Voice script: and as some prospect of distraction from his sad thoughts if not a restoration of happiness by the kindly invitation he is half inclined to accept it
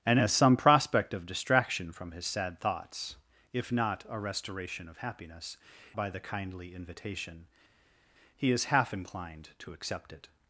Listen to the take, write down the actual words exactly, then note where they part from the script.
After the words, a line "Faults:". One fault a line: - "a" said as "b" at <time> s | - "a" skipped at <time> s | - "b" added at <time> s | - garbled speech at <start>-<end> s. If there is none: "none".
and as some prospect of distraction from his sad thoughts if not a restoration of happiness by the kindly invitation he is half inclined to accept it
Faults:
none